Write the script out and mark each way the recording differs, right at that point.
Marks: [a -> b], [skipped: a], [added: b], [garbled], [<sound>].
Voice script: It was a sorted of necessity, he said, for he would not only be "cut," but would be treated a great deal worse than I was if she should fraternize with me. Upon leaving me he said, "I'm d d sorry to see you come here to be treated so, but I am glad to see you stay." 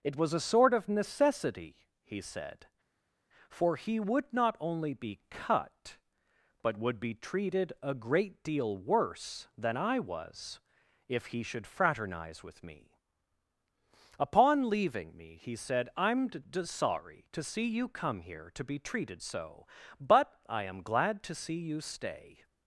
It was a [sorted -> sort] of necessity, he said, for he would not only be "cut," but would be treated a great deal worse than I was if [she -> he] should fraternize with me. Upon leaving me he said, "I'm d d sorry to see you come here to be treated so, but I am glad to see you stay."